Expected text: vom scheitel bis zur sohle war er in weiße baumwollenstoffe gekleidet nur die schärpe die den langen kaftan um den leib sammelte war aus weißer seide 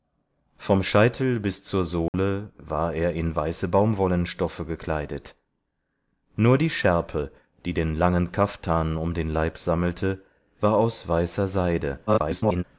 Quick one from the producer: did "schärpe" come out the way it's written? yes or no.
yes